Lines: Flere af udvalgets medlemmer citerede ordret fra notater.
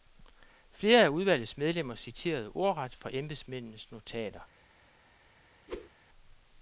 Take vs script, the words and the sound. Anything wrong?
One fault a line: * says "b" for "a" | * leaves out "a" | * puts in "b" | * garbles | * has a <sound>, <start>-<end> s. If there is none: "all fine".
* puts in "embedsmændenes"
* has a whoosh, 5.7-5.9 s